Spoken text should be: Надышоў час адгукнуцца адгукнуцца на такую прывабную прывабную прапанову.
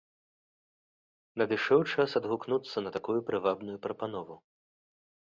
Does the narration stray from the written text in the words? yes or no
yes